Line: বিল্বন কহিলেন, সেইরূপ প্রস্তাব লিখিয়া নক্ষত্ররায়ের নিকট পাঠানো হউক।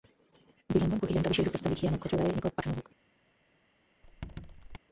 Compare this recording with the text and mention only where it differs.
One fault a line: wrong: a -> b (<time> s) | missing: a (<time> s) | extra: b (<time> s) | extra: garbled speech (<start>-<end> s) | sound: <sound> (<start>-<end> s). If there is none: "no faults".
extra: তবে (1.2 s)
sound: squeak (4.0-4.8 s)